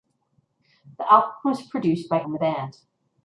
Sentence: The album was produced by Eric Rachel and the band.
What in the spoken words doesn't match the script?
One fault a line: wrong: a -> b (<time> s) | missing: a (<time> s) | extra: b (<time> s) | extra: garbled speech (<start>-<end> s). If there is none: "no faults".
missing: Eric Rachel (2.2 s)